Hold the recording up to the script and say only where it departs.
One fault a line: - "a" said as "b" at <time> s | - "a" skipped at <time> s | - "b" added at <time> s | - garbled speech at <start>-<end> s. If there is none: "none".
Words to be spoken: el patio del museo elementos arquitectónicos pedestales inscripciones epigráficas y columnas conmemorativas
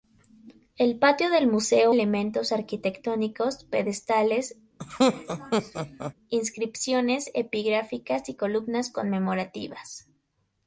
none